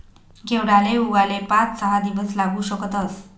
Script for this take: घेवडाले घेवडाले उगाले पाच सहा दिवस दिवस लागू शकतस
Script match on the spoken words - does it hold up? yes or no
no